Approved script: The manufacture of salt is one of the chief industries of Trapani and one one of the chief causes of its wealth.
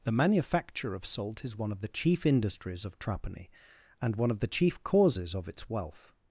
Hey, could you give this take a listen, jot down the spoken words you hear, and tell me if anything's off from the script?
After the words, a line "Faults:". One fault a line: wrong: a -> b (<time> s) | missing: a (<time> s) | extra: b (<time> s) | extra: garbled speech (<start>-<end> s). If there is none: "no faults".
The manufacture of salt is one of the chief industries of Trapani and one of the chief causes of its wealth.
Faults:
missing: one (4.3 s)